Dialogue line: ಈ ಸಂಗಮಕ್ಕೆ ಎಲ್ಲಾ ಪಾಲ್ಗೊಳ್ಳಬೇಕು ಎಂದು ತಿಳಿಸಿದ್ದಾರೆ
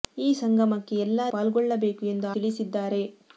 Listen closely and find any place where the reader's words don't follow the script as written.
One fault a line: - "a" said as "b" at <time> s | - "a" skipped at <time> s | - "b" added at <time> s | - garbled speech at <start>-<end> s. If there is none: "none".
none